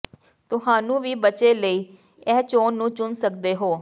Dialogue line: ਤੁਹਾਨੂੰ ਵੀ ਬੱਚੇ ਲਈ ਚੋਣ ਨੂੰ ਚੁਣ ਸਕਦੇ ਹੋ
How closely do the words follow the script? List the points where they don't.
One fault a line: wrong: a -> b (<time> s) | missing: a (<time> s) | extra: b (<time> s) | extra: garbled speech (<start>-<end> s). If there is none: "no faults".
extra: ਇਹ (2.3 s)